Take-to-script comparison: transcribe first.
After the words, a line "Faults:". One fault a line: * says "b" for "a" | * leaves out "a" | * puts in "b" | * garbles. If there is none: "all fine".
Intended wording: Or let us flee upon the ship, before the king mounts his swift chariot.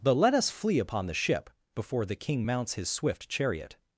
But let us flee upon the ship, before the king mounts his swift chariot.
Faults:
* says "But" for "Or"